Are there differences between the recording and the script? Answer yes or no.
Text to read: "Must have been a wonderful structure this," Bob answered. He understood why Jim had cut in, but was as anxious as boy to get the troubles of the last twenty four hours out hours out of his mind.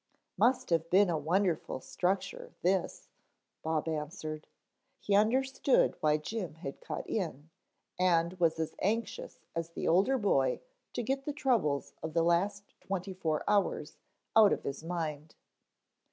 yes